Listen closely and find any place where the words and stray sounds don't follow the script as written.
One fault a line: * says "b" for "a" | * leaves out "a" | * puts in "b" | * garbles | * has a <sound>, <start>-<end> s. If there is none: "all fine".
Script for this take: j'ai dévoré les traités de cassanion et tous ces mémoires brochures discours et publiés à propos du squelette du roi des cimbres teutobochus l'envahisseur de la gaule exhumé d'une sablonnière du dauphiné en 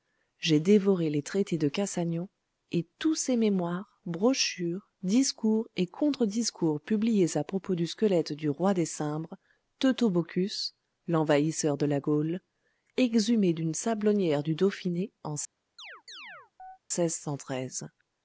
* puts in "contre discours"
* has a chirp, 15.8-16.8 s